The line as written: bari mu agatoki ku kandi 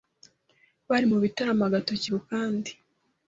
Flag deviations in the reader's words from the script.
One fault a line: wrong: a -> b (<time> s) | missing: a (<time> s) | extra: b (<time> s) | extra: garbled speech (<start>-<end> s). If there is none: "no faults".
extra: bitaramo (1.2 s)